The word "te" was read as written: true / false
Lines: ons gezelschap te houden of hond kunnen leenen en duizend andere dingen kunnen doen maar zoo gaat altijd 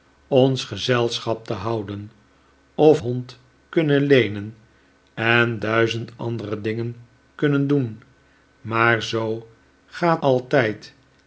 true